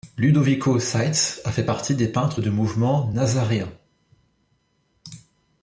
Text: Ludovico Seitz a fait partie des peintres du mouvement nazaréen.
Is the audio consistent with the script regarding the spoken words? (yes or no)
yes